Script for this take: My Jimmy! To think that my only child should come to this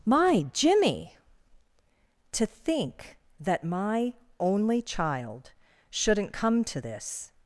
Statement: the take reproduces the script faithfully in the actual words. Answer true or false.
false